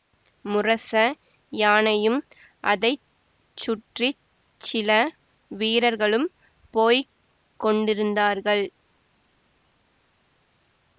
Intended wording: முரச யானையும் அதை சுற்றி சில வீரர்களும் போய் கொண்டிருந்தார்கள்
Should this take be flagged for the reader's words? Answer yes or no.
no